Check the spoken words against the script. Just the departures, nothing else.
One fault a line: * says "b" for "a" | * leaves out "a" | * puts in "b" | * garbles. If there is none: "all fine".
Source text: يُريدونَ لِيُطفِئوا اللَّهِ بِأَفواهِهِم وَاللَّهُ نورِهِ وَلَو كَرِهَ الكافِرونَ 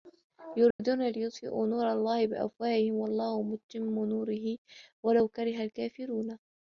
* puts in "نورَ"
* puts in "مُتِمُّ"